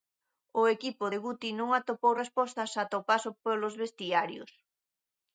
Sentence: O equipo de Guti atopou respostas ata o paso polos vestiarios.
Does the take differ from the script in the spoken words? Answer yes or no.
yes